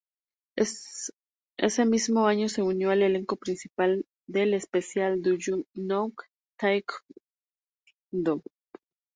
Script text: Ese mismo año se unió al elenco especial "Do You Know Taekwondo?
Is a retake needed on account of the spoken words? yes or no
yes